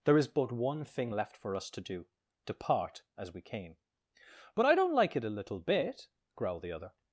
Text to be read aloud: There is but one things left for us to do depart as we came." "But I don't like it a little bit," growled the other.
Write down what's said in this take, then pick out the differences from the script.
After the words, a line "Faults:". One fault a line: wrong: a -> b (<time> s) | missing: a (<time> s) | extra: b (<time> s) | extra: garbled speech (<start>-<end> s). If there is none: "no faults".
There is but one thing left for us to do depart as we came." "But I don't like it a little bit," growled the other.
Faults:
wrong: things -> thing (0.8 s)